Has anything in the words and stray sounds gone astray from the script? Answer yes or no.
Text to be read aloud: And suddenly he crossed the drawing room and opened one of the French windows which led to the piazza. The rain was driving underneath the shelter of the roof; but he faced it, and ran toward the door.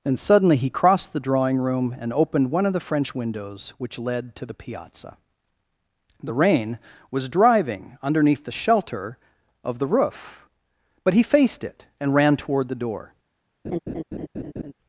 yes